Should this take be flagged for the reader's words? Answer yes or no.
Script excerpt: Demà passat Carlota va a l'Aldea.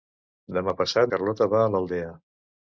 no